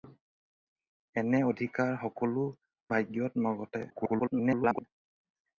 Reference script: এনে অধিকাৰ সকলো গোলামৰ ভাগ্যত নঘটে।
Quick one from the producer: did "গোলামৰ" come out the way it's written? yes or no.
no